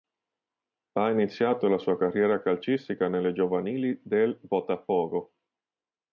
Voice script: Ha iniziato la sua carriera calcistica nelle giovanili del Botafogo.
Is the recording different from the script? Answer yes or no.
no